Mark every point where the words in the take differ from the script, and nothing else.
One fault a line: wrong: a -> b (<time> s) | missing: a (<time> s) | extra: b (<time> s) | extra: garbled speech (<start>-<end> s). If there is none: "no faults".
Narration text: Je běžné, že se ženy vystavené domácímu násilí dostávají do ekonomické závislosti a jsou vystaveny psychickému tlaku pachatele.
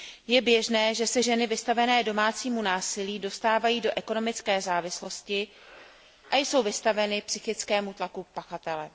no faults